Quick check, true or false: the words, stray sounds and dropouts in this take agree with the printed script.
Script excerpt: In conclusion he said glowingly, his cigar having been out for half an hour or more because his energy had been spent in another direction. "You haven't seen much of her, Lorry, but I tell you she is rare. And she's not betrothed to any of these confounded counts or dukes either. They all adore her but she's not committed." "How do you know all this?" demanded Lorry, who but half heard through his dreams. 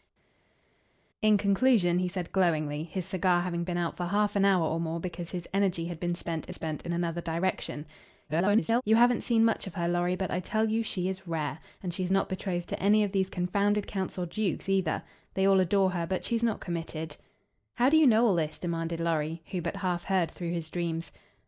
false